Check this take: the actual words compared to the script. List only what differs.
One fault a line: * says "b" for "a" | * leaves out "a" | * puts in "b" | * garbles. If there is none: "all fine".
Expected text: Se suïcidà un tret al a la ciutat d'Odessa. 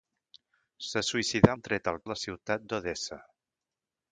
all fine